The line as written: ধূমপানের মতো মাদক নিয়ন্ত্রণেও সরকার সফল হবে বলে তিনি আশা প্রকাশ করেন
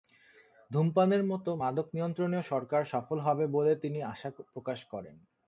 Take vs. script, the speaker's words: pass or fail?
pass